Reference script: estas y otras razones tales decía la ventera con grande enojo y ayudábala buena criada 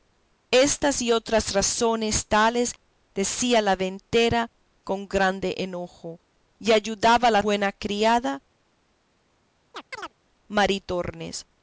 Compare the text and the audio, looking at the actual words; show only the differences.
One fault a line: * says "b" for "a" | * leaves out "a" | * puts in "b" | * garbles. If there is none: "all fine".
all fine